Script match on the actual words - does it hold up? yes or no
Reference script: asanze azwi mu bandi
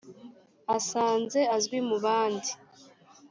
yes